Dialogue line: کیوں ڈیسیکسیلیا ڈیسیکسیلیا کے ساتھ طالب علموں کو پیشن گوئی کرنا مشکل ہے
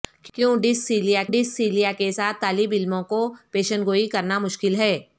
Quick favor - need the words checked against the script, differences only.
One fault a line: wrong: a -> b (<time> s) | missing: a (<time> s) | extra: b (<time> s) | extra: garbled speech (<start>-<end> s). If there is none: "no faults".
no faults